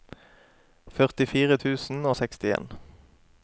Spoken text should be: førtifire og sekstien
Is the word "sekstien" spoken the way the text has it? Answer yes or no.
yes